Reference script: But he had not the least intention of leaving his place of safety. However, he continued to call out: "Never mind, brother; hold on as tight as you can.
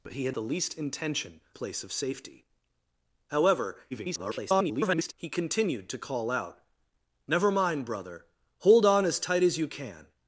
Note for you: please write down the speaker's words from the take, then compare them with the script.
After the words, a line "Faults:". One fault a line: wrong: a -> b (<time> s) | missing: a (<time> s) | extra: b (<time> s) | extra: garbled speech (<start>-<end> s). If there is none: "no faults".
But he had the least intention place of safety. However, [garbled] he continued to call out: "Never mind, brother; hold on as tight as you can.
Faults:
missing: not (0.3 s)
missing: of leaving his (1.4 s)
extra: garbled speech (3.9-5.1 s)